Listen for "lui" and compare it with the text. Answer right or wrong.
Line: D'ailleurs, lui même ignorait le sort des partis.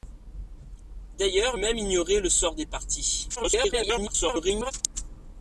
wrong